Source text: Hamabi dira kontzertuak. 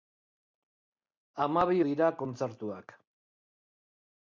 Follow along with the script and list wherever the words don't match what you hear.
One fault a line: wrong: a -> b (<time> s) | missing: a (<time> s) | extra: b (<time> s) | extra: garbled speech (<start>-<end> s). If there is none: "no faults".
no faults